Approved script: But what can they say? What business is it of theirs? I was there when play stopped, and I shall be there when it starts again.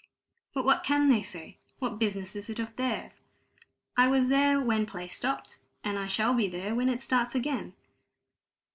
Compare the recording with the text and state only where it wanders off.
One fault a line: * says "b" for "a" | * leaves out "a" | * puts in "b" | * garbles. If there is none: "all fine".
all fine